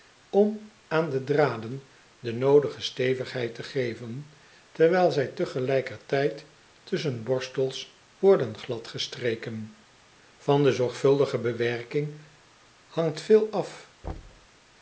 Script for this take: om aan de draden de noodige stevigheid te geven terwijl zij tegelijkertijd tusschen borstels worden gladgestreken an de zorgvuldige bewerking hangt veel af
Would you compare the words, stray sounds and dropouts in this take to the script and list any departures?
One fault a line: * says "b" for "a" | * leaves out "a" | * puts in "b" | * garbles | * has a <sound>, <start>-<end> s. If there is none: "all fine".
* has a thud, 14.0-14.5 s